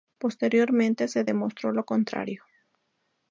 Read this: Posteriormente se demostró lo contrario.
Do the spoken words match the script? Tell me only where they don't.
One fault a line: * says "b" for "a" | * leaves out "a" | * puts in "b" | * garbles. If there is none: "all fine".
all fine